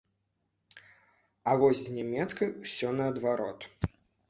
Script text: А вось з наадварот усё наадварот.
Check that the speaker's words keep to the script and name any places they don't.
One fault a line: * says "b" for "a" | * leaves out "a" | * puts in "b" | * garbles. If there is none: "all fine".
* says "нямецкай" for "наадварот"